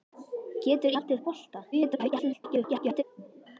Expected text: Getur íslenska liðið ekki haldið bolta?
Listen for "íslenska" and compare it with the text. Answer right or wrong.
wrong